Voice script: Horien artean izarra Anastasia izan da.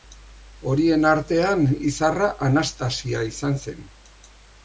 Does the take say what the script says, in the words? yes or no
no